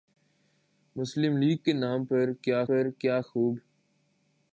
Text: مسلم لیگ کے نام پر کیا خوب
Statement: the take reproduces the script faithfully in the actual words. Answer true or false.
false